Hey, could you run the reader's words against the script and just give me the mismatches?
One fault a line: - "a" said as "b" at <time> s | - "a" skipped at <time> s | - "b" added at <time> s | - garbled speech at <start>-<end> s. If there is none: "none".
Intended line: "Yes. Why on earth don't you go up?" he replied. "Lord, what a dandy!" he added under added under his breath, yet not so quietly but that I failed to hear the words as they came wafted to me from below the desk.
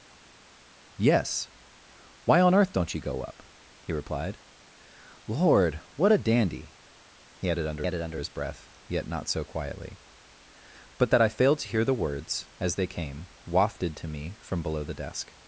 none